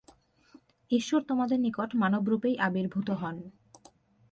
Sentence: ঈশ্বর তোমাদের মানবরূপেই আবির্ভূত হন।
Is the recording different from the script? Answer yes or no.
yes